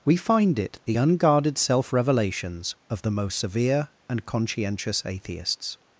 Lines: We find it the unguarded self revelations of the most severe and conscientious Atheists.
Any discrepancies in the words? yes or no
no